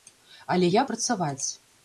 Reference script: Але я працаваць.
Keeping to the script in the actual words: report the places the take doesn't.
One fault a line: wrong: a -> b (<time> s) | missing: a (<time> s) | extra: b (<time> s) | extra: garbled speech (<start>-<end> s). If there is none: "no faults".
no faults